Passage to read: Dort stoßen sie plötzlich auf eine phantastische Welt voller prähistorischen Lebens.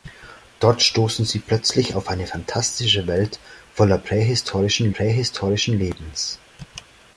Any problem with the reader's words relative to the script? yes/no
yes